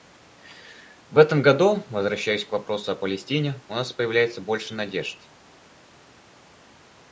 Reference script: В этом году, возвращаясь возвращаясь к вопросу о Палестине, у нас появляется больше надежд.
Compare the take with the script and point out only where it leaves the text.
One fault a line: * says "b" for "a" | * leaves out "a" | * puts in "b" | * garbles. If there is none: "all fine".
* leaves out "возвращаясь"